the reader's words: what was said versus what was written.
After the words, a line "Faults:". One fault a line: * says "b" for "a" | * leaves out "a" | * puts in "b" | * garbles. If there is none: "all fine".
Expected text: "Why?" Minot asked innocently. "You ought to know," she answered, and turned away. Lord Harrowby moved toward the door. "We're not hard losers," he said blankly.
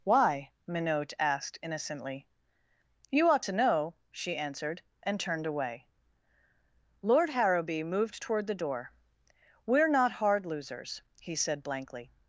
"Why?" Minot asked innocently. "You ought to know," she answered, and turned away. Lord Harrowby moved toward the door. "We're not hard losers," he said blankly.
Faults:
all fine